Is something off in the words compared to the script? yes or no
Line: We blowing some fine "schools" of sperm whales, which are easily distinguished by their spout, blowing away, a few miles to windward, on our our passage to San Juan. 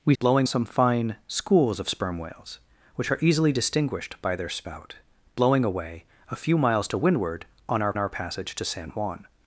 no